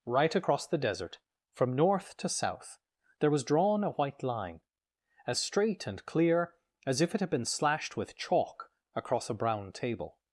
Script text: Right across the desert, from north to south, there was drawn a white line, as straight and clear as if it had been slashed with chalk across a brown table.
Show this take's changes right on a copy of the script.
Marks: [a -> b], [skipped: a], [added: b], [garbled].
Right across the desert, from north to south, there was drawn a white line, as straight and clear as if it had been slashed with chalk across a brown table.